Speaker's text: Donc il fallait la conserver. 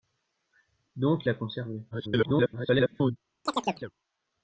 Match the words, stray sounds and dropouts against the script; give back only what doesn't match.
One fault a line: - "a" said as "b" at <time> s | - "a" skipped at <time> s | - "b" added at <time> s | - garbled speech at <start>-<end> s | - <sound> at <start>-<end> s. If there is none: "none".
- "il fallait" skipped at 1.3 s
- garbled speech at 1.9-3.2 s
- chirp at 3.5-3.9 s